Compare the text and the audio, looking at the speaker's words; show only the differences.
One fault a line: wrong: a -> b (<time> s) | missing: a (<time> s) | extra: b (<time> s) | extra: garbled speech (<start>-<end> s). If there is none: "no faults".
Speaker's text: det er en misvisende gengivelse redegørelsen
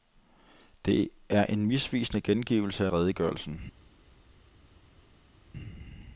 no faults